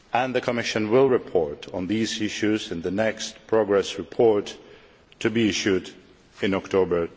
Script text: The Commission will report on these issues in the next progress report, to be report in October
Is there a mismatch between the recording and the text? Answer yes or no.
yes